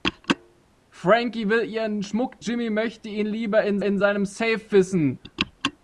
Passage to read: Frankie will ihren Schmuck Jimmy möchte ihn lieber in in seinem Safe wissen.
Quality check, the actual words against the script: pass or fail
pass